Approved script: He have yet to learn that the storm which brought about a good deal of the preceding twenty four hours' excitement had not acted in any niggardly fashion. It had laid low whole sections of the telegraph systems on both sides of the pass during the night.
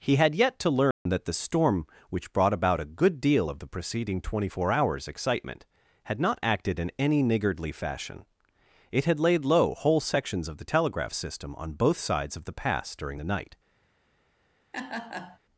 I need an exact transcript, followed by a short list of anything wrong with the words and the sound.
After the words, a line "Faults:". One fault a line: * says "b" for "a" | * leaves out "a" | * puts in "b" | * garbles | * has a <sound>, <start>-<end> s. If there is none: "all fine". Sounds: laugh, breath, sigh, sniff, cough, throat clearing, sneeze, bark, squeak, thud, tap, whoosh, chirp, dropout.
He had yet to learn that the storm which brought about a good deal of the preceding twenty four hours' excitement had not acted in any niggardly fashion. It had laid low whole sections of the telegraph system on both sides of the pass during the night.
Faults:
* says "had" for "have"
* has a dropout, 0.9-1.1 s
* says "system" for "systems"
* has a laugh, 14.7-15.4 s